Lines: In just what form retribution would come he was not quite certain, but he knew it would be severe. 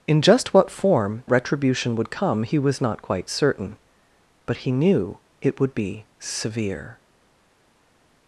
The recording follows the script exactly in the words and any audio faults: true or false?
true